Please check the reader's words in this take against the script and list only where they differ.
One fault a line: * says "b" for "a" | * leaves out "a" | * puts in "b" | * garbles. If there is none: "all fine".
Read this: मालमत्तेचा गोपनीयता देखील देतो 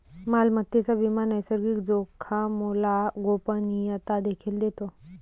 * puts in "विमा नैसर्गिक जोखामोला"